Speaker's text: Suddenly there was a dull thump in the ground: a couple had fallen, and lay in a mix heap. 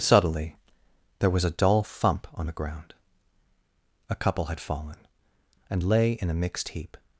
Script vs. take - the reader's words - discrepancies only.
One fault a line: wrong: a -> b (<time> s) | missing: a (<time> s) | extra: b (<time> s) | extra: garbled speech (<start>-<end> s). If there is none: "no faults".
wrong: in -> on (2.3 s)
wrong: mix -> mixed (6.3 s)